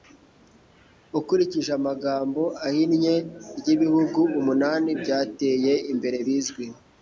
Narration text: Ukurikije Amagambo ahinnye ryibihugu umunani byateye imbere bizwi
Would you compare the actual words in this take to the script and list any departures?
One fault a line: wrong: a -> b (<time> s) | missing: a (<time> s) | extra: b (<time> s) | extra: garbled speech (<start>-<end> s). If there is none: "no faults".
no faults